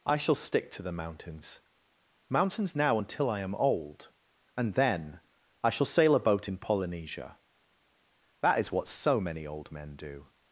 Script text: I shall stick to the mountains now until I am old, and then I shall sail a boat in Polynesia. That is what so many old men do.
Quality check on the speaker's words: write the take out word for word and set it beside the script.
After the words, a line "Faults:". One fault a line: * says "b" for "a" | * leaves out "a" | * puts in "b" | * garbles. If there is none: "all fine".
I shall stick to the mountains mountains now until I am old, and then I shall sail a boat in Polynesia. That is what so many old men do.
Faults:
* puts in "mountains"